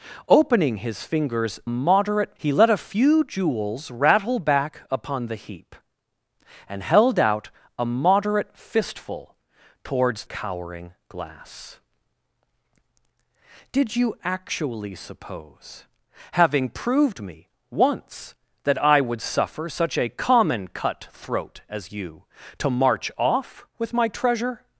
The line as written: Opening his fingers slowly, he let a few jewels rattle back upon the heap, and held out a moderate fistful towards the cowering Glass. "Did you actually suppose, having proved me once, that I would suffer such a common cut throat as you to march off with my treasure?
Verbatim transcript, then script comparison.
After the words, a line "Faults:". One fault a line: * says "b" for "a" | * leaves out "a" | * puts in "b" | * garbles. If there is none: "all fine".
Opening his fingers moderate, he let a few jewels rattle back upon the heap, and held out a moderate fistful towards cowering Glass. "Did you actually suppose, having proved me once, that I would suffer such a common cut throat as you to march off with my treasure?
Faults:
* says "moderate" for "slowly"
* leaves out "the"